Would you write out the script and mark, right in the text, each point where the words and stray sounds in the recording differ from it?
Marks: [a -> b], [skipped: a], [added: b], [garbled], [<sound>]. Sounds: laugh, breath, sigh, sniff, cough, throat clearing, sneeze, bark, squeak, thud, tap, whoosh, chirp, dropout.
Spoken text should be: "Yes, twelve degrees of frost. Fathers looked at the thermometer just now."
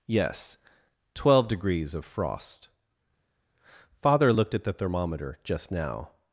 "Yes, twelve degrees of frost. [Fathers -> Father] looked at the thermometer just now."